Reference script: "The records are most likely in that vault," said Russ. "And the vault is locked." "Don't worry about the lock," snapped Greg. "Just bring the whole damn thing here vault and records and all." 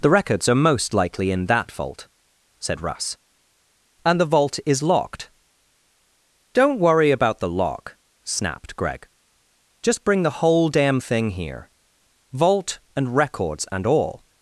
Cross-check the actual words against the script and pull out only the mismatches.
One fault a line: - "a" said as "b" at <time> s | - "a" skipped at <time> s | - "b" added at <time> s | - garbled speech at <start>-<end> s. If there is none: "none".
none